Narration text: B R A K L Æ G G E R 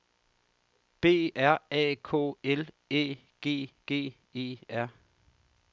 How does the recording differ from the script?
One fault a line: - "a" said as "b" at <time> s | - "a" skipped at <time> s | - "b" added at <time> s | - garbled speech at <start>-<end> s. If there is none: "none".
none